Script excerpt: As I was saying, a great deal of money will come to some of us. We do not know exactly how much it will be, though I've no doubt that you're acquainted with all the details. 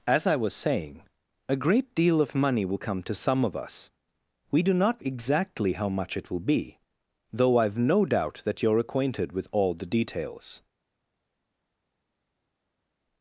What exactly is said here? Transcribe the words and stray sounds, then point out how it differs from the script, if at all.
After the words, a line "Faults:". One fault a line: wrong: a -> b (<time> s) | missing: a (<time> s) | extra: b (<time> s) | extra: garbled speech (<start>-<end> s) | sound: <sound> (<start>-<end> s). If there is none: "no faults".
As I was saying, a great deal of money will come to some of us. We do not exactly how much it will be, though I've no doubt that you're acquainted with all the details.
Faults:
missing: know (5.0 s)